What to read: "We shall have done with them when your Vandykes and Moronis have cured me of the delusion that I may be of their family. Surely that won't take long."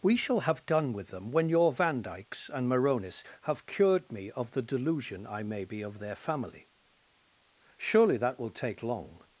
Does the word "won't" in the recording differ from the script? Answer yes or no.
yes